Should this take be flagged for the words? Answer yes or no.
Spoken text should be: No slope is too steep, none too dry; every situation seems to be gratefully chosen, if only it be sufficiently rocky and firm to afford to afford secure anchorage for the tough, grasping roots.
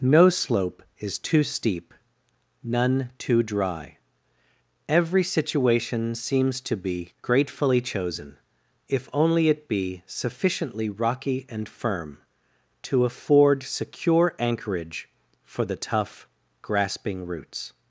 yes